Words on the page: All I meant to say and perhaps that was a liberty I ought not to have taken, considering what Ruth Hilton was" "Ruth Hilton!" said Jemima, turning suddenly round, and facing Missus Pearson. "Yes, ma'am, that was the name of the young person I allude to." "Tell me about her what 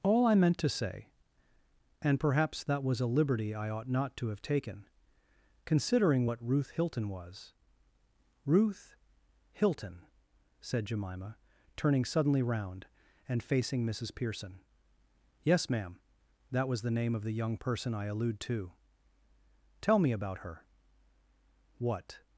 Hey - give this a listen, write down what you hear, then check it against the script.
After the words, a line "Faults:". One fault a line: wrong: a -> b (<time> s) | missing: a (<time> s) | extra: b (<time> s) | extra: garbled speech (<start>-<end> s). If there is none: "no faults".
All I meant to say and perhaps that was a liberty I ought not to have taken, considering what Ruth Hilton was" "Ruth Hilton!" said Jemima, turning suddenly round, and facing Missus Pearson. "Yes, ma'am, that was the name of the young person I allude to." "Tell me about her what
Faults:
no faults